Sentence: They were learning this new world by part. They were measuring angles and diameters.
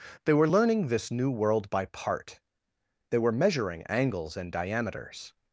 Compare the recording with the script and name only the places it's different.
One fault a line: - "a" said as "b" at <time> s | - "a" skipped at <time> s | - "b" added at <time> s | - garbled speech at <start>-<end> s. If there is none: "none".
none